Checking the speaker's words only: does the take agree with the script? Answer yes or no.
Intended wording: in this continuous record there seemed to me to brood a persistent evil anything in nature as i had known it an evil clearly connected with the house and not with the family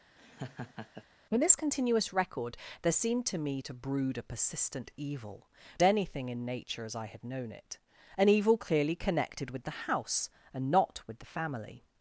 yes